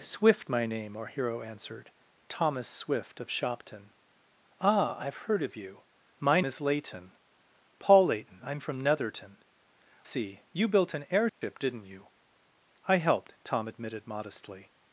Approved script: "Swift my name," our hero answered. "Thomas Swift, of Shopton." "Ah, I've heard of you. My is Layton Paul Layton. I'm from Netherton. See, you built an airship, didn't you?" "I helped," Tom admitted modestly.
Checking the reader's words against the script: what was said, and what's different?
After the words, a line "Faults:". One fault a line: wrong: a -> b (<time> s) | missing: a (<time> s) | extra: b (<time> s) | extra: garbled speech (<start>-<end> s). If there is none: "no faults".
"Swift my name," our hero answered. "Thomas Swift, of Shopton." "Ah, I've heard of you. My is Layton Paul Layton. I'm from Netherton. See, you built an airship, didn't you?" "I helped," Tom admitted modestly.
Faults:
no faults